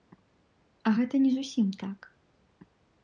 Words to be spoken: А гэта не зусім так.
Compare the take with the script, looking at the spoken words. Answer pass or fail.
pass